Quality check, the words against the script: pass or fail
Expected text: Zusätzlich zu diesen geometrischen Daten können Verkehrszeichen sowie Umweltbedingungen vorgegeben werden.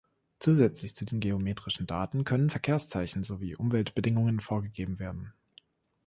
pass